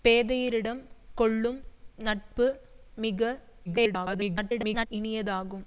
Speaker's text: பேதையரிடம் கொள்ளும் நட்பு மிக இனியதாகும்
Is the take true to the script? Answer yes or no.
no